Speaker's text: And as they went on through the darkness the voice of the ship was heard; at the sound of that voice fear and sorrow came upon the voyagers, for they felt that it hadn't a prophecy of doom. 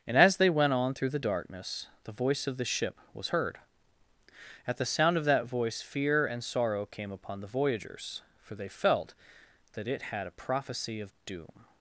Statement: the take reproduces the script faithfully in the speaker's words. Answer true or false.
false